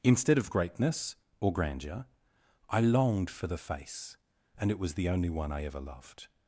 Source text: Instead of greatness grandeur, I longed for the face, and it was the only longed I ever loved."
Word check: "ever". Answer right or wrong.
right